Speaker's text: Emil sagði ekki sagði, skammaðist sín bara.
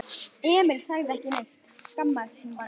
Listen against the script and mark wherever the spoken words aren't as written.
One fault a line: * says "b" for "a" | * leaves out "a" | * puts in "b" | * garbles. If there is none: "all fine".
* says "neitt" for "sagði"